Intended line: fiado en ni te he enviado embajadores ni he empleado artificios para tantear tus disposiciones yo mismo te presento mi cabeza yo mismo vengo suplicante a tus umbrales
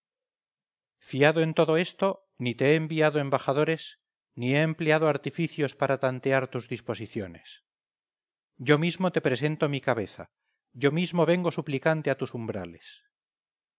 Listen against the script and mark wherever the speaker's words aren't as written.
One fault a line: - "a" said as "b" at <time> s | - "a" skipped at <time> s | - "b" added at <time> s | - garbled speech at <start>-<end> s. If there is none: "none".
- "todo esto" added at 1.5 s